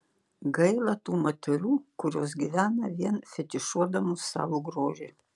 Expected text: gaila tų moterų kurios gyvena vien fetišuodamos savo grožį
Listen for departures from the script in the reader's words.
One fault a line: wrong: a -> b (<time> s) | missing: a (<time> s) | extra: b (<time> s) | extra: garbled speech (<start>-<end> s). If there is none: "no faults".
no faults